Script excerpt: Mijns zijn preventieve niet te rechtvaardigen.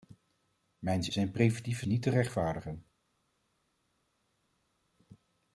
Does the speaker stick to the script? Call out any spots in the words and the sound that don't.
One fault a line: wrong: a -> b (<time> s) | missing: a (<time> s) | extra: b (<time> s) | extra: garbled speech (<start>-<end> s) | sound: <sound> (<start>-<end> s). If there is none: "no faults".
no faults